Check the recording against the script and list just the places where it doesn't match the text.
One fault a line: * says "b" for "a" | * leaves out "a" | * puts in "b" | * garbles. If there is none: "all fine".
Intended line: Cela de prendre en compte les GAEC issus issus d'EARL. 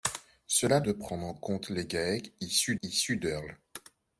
all fine